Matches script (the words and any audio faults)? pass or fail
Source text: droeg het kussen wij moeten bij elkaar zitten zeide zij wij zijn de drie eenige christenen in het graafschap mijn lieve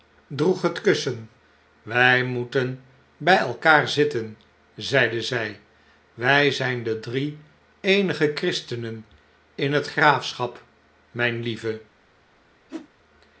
fail